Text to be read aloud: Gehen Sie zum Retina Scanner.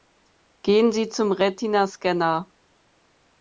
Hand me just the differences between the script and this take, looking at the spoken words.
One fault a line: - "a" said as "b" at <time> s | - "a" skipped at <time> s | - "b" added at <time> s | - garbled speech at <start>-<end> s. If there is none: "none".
none